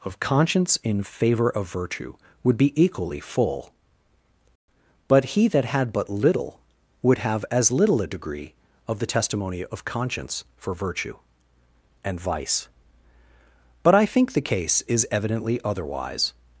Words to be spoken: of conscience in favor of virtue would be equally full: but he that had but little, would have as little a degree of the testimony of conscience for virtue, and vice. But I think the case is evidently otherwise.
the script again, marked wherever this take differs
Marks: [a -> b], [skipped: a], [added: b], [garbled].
of conscience in favor of virtue would be equally full: but he that had but little, would have as little a degree of the testimony of conscience for virtue, and vice. But I think the case is evidently otherwise.